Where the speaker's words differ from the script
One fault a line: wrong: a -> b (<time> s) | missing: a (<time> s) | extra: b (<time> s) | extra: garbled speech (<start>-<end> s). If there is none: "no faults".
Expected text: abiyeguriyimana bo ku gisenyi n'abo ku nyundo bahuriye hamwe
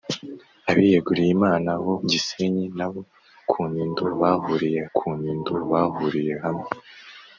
extra: gisenyi n'abo (2.1 s)
wrong: gisenyi n'abo -> nyundo bahuriye (3.7 s)